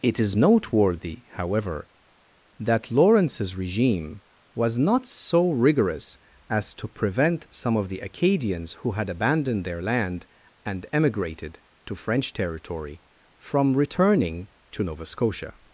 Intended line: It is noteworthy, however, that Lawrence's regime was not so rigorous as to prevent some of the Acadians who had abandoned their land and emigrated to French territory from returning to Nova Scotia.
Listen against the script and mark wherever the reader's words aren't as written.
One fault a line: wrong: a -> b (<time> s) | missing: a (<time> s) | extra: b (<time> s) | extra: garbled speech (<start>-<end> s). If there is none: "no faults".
no faults